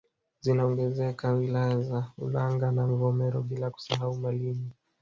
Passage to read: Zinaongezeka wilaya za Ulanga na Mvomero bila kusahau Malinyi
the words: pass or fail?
pass